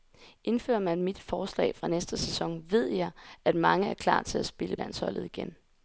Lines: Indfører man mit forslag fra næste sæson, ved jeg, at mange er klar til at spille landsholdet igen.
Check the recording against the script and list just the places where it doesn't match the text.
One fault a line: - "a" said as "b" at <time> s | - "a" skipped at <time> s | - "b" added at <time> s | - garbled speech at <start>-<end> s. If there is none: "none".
none